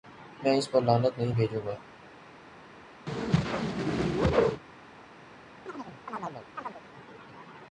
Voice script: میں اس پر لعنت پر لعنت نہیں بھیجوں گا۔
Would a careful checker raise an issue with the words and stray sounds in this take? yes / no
yes